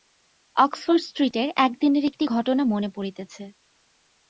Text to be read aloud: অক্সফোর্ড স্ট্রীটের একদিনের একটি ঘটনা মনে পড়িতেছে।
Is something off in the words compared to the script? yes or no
no